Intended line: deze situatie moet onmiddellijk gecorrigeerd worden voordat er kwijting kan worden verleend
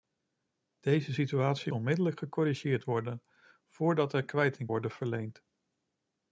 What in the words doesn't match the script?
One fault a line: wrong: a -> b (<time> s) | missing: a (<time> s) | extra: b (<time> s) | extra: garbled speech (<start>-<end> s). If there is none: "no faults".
missing: moet (1.7 s)
missing: kan (4.7 s)